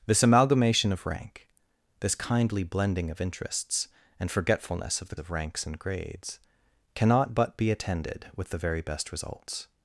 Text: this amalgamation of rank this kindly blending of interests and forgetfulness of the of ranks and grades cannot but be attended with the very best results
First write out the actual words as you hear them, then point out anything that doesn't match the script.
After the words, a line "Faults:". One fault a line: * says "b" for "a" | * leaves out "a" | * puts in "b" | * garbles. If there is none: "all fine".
this amalgamation of rank this kindly blending of interests and forgetfulness of the of ranks and grades cannot but be attended with the very best results
Faults:
all fine